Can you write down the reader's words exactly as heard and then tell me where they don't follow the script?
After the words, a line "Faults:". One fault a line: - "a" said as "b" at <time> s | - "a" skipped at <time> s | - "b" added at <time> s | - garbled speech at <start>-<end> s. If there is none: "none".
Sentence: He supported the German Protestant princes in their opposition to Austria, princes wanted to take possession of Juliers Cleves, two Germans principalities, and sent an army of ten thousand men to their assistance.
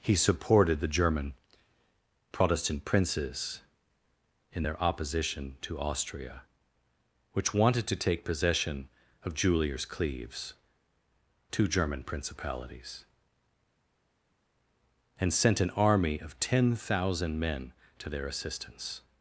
He supported the German Protestant princes in their opposition to Austria, which wanted to take possession of Juliers Cleves, two German principalities, and sent an army of ten thousand men to their assistance.
Faults:
- "princes" said as "which" at 7.3 s
- "Germans" said as "German" at 11.7 s